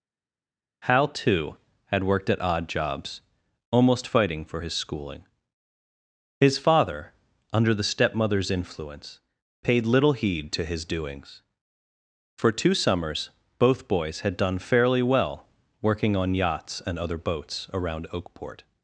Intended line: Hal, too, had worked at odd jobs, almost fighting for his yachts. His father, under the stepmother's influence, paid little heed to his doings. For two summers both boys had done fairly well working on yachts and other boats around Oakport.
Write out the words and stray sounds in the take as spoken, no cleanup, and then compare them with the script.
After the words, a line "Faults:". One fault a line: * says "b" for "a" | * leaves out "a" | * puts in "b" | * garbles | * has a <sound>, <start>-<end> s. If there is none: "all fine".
Hal, too, had worked at odd jobs, almost fighting for his schooling. His father, under the stepmother's influence, paid little heed to his doings. For two summers both boys had done fairly well working on yachts and other boats around Oakport.
Faults:
* says "schooling" for "yachts"